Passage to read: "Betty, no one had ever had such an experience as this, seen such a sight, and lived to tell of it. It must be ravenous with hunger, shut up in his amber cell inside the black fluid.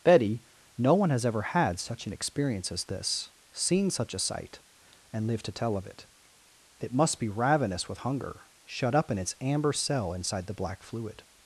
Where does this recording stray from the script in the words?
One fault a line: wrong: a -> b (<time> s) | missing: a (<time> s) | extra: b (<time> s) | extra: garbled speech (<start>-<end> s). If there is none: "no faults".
wrong: had -> has (1.1 s)
wrong: his -> its (9.2 s)